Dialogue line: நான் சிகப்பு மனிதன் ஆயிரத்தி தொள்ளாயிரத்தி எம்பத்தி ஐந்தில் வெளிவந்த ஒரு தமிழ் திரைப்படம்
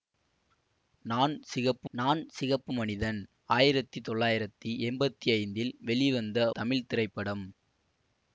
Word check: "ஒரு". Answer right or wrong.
wrong